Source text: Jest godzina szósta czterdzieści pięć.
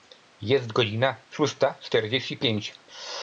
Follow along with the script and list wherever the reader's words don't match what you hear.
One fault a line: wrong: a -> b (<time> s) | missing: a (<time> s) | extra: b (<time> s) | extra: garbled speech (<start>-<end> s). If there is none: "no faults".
no faults